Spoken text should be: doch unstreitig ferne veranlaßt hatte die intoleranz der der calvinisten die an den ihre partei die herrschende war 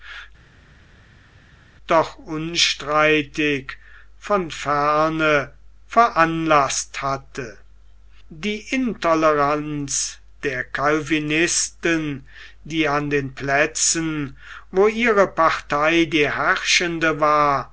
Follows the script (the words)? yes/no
no